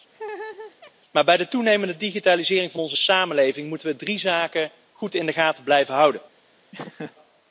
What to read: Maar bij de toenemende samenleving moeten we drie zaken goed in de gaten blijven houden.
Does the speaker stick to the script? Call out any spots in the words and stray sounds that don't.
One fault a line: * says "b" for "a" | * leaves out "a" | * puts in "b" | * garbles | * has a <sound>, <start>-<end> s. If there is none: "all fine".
* has a laugh, 0.1-0.9 s
* puts in "digitalisering van onze"
* has a laugh, 6.7-7.2 s